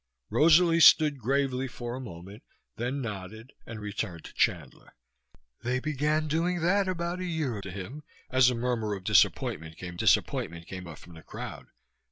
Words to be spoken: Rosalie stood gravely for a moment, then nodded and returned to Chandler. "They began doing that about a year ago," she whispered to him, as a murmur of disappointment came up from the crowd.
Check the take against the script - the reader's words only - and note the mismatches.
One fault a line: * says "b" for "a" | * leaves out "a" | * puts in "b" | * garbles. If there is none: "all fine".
* leaves out "ago she whispered"
* puts in "disappointment came"